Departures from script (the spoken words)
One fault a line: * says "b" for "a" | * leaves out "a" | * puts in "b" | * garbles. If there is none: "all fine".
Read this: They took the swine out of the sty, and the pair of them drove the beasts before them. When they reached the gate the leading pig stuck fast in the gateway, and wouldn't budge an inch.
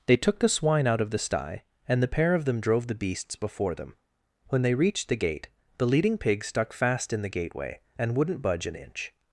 all fine